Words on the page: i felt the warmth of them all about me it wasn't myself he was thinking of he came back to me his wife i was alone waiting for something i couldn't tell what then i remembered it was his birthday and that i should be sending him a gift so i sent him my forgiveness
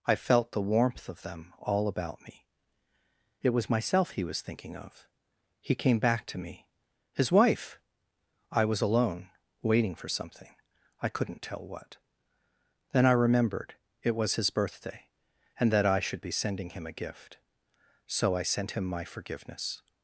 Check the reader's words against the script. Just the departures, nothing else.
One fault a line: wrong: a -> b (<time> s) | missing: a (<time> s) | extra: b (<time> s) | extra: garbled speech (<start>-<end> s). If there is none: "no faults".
wrong: wasn't -> was (3.5 s)